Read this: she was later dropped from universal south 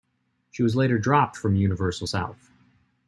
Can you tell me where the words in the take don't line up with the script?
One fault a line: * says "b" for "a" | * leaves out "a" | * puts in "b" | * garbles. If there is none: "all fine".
all fine